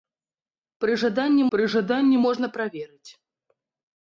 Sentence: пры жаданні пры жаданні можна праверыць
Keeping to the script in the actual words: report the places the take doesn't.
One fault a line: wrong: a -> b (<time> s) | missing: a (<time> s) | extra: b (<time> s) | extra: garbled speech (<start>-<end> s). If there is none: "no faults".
no faults